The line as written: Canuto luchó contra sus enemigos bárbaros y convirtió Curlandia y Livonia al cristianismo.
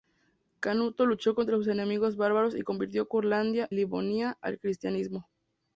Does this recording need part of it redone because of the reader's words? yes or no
yes